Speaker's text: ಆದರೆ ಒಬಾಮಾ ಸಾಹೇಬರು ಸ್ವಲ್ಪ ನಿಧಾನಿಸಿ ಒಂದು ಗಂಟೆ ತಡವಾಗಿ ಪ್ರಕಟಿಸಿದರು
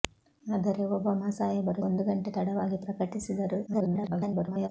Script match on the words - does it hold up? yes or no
no